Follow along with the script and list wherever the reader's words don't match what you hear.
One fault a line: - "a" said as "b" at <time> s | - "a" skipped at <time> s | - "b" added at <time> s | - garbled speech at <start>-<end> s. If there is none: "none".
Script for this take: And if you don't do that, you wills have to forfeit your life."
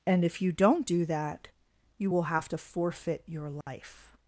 - "wills" said as "will" at 2.1 s